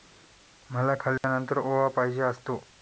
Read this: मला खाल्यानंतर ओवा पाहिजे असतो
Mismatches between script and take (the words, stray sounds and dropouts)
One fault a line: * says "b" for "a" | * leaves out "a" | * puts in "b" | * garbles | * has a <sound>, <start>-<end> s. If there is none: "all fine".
* has a dropout, 1.2-1.2 s